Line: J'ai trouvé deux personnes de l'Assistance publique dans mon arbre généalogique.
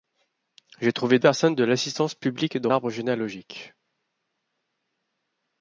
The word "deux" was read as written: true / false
false